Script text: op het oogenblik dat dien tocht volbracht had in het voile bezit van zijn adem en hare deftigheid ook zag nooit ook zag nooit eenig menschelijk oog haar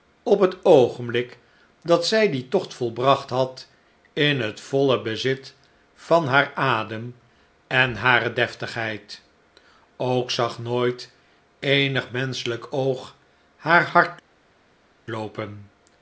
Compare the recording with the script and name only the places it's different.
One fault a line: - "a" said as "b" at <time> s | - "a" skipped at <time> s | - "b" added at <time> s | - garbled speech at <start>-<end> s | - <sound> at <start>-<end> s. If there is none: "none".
- "zij" added at 2.1 s
- "zijn" said as "haar" at 6.3 s
- "ook zag nooit" skipped at 11.1 s